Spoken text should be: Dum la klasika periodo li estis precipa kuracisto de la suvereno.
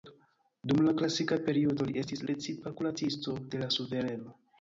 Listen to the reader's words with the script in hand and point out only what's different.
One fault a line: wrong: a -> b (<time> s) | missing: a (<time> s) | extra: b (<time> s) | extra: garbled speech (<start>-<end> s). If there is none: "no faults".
no faults